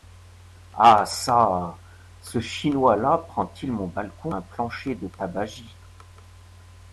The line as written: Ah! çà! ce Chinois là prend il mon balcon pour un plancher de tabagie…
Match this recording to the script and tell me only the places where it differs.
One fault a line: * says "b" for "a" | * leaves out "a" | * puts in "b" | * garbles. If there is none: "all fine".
* leaves out "pour"